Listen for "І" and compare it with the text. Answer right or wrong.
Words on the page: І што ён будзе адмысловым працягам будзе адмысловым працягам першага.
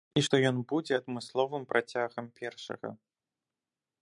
right